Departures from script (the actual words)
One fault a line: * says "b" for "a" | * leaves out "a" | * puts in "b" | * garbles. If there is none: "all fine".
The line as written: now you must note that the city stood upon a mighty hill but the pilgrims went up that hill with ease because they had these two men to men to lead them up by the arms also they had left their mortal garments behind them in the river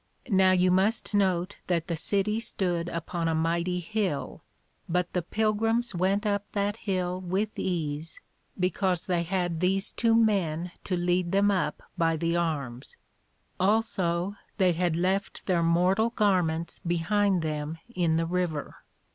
* leaves out "men to"